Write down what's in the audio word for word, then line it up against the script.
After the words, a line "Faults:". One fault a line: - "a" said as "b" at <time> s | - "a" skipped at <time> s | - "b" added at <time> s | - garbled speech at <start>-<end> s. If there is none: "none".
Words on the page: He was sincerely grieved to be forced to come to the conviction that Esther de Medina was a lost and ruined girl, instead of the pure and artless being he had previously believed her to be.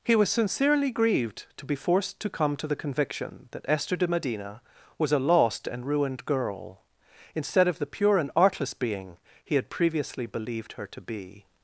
He was sincerely grieved to be forced to come to the conviction that Esther de Medina was a lost and ruined girl, instead of the pure and artless being he had previously believed her to be.
Faults:
none